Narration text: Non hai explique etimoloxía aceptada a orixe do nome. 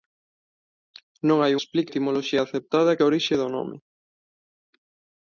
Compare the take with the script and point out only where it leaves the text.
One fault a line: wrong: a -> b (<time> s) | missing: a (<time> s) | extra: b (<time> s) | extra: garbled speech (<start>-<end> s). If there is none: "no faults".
no faults